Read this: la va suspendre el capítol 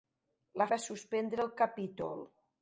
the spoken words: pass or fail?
pass